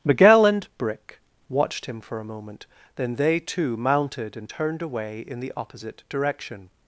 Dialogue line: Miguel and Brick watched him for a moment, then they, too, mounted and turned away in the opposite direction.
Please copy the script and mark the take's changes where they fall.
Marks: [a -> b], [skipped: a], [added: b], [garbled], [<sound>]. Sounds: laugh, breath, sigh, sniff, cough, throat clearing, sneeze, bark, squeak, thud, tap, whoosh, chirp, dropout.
Miguel and Brick watched him for a moment, then they, too, mounted and turned away in the opposite direction.